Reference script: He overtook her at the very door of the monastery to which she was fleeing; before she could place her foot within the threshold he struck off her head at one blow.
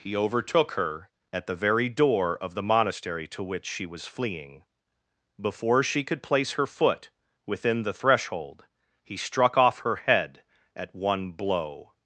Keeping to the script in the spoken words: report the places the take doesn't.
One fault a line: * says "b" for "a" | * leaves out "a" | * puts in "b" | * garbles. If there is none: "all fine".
all fine